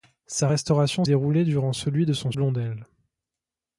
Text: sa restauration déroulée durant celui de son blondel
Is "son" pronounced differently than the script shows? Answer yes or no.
no